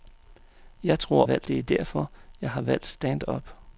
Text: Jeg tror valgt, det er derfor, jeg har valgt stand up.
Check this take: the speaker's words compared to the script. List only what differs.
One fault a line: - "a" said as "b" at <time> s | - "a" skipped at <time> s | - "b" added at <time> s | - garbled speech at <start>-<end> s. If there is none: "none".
none